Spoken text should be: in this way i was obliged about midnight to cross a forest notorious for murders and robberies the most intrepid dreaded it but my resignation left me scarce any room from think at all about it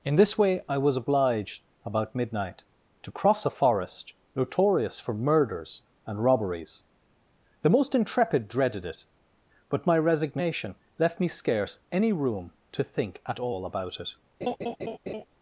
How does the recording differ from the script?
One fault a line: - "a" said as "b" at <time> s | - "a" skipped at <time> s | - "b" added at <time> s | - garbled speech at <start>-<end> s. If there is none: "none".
- "from" said as "to" at 12.7 s